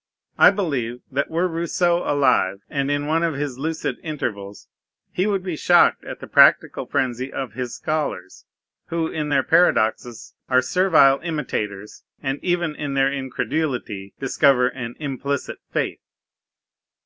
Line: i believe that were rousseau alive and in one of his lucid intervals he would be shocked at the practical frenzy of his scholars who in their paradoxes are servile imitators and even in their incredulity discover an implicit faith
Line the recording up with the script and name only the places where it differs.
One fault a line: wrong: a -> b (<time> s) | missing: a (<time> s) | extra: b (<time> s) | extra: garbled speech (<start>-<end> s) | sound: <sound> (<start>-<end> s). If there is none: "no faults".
no faults